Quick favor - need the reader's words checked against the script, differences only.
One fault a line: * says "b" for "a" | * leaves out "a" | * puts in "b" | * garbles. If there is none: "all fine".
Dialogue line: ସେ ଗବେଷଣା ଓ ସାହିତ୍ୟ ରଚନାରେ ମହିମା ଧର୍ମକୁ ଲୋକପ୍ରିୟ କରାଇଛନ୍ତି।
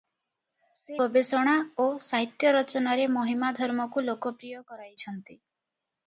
all fine